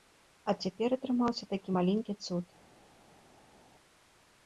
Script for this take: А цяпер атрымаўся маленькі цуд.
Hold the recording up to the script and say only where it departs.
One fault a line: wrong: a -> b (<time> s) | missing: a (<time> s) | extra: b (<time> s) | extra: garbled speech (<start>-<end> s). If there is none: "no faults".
extra: такі (1.5 s)